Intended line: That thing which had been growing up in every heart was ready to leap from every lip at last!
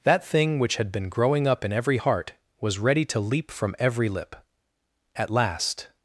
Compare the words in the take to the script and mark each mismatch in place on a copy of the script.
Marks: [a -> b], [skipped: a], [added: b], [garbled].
That thing which had been growing up in every heart was ready to leap from every lip at last!